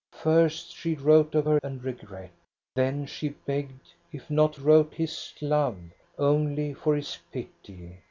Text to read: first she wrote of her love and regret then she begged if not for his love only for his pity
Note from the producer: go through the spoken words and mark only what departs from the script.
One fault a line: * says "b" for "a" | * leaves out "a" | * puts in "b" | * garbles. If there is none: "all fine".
* leaves out "love"
* says "wrote" for "for"